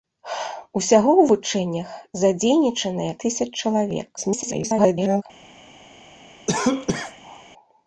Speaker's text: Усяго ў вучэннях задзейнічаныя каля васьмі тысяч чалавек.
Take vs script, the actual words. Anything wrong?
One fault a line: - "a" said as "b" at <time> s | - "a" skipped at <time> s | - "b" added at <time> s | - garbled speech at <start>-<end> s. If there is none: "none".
- "каля васьмі" skipped at 3.1 s
- garbled speech at 4.2-5.2 s